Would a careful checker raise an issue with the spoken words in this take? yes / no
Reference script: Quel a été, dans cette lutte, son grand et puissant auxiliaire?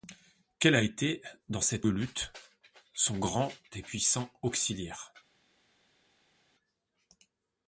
no